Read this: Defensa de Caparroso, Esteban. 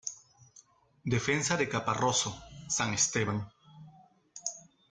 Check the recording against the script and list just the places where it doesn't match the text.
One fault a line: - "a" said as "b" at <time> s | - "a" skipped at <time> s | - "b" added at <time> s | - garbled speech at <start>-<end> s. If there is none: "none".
- "San" added at 2.7 s